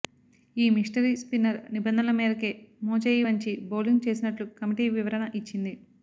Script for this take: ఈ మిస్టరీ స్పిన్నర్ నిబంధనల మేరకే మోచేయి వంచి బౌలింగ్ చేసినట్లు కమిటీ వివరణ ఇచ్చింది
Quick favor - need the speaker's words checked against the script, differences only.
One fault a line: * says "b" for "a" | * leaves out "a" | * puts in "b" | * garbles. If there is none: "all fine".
all fine